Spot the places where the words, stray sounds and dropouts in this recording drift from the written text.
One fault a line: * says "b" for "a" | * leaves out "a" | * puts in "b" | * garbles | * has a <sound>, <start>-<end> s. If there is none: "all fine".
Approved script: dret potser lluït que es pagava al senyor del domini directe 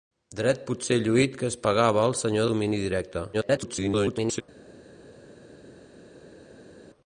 * leaves out "del"
* garbles